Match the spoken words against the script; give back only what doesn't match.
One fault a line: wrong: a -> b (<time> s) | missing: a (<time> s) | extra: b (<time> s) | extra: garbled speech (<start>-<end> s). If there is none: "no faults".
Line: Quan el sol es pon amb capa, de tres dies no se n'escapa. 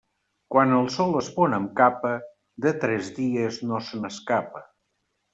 no faults